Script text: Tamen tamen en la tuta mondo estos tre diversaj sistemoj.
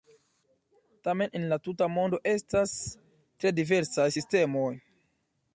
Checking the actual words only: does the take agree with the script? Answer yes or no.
no